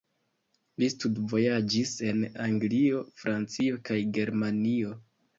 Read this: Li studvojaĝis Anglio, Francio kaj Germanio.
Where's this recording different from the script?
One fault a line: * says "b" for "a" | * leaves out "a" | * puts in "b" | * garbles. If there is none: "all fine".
* puts in "en"